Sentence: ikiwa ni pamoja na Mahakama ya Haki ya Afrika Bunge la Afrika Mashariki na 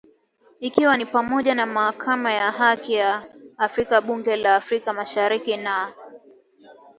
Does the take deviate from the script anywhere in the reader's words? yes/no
no